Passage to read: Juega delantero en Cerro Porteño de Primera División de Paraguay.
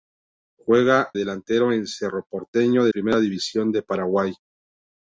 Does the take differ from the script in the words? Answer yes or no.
no